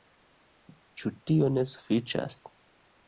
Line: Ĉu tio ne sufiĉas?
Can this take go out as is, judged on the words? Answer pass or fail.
pass